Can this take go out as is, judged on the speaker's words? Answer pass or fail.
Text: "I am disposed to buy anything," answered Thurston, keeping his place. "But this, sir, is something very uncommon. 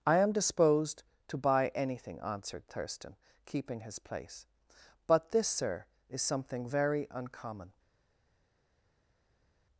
pass